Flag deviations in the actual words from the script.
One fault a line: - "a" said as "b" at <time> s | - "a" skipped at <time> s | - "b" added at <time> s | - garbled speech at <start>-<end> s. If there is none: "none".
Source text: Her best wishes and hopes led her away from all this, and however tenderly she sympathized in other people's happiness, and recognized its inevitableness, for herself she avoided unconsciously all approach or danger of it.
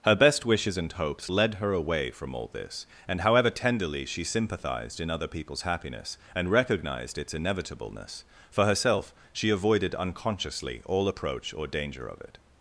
none